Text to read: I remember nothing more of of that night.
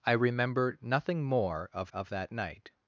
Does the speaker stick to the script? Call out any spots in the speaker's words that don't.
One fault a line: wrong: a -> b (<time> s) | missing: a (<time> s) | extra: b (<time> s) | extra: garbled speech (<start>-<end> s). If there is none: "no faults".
no faults